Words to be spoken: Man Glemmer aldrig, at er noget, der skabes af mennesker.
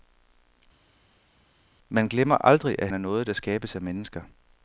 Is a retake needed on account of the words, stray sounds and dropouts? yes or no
no